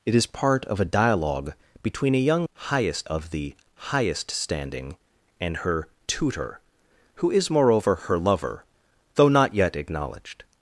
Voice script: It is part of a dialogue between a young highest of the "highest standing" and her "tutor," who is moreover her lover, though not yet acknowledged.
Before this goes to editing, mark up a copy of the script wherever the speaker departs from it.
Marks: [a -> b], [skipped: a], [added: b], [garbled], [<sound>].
It is part of a dialogue between a young highest of the "highest standing" and her "tutor," who is moreover her lover, though not yet acknowledged.